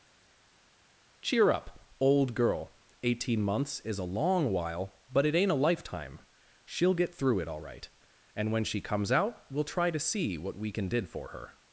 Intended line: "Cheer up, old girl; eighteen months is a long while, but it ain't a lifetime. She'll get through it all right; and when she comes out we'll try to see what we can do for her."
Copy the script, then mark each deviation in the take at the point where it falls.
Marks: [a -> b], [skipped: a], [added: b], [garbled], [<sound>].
"Cheer up, old girl; eighteen months is a long while, but it ain't a lifetime. She'll get through it all right; and when she comes out we'll try to see what we can [do -> did] for her."